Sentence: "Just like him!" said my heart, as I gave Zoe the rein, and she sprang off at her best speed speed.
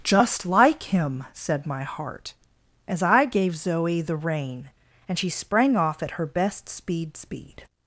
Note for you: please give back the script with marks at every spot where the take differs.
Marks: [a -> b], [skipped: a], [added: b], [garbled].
"Just like him!" said my heart, as I gave Zoe the rein, and she sprang off at her best speed speed.